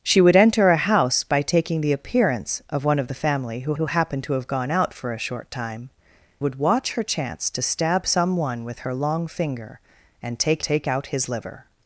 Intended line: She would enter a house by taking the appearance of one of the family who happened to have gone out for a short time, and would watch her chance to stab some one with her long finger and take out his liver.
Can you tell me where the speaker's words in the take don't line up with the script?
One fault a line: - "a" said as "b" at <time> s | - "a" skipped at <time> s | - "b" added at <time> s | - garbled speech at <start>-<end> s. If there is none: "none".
- "who" added at 3.7 s
- "and" skipped at 5.9 s
- "take" added at 10.6 s